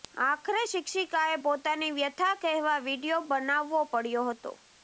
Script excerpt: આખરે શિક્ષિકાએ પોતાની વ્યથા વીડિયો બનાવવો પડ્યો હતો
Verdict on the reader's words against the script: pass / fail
fail